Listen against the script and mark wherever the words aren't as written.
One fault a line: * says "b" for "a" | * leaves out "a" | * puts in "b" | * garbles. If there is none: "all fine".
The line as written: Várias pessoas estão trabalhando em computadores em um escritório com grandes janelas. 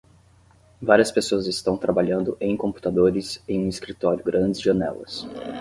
* leaves out "com"